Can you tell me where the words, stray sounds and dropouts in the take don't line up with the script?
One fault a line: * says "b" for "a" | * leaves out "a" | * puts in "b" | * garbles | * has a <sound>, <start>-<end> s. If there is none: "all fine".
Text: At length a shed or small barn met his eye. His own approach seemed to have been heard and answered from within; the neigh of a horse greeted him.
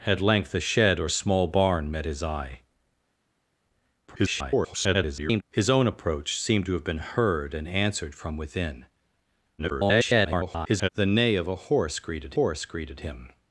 * garbles
* garbles
* puts in "horse greeted"